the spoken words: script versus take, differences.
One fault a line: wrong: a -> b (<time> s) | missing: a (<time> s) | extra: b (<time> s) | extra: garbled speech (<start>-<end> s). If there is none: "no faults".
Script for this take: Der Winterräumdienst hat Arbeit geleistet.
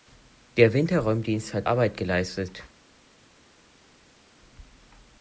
no faults